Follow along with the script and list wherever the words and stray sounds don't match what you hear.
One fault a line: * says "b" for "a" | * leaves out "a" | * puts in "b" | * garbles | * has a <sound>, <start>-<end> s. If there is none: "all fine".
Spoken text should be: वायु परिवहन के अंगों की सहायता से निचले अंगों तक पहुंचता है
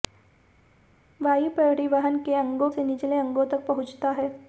* leaves out "की सहायता"